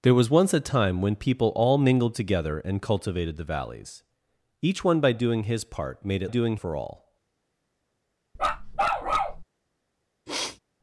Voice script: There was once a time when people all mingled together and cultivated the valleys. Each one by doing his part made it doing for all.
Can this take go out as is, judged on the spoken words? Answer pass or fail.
pass